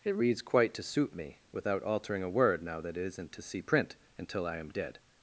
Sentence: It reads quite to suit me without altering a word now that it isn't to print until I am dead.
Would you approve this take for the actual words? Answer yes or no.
no